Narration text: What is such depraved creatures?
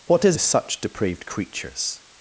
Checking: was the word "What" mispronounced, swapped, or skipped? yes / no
no